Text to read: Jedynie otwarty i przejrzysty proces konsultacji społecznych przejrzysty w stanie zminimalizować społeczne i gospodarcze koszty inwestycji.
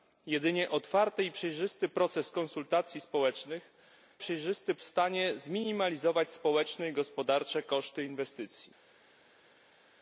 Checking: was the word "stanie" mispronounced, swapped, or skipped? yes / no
no